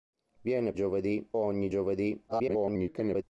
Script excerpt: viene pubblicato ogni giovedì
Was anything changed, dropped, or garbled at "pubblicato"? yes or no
yes